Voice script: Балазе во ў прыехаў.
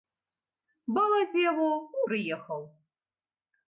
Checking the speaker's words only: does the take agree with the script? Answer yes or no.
yes